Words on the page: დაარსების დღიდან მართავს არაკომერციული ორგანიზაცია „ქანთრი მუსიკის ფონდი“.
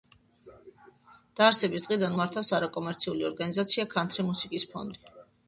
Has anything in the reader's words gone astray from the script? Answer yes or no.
no